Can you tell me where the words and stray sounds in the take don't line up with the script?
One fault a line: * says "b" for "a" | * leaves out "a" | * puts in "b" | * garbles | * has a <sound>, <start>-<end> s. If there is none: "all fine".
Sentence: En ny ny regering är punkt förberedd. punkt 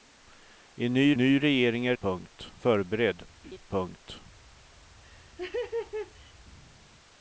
* has a laugh, 3.4-3.6 s
* has a laugh, 5.0-6.3 s